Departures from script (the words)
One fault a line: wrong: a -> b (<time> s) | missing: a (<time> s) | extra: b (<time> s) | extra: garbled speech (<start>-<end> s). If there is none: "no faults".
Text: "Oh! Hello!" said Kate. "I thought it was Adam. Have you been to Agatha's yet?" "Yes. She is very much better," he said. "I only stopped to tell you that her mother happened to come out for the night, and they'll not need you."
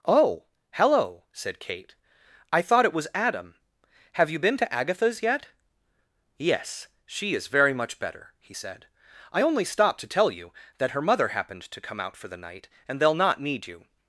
no faults